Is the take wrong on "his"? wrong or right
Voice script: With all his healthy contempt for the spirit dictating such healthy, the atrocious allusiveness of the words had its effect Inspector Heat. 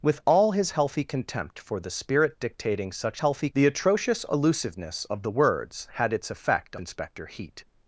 right